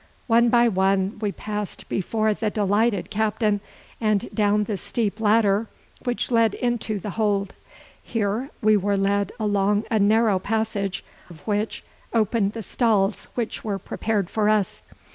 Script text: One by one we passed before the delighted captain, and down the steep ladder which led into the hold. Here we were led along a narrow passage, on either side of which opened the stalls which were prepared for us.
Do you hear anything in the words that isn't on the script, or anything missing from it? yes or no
yes